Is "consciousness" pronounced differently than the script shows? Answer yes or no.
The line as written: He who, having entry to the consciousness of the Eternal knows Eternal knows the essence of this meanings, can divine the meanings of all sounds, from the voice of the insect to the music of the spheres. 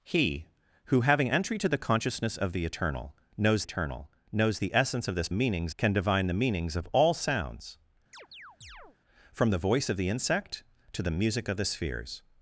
no